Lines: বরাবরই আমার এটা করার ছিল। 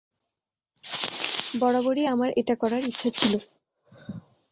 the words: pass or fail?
fail